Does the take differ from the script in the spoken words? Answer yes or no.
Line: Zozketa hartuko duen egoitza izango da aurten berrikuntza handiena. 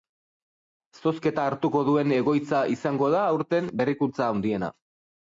no